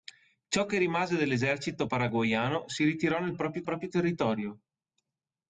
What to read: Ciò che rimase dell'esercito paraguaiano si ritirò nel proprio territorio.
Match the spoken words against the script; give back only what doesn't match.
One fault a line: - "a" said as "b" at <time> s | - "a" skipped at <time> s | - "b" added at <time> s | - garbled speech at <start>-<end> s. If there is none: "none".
- "proprio" added at 3.6 s